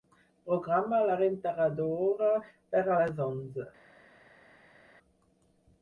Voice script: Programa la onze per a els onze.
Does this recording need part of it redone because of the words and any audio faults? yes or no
yes